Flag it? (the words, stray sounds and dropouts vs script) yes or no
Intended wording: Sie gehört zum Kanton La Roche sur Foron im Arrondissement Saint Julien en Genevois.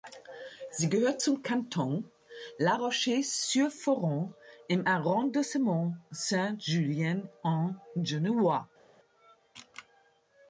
no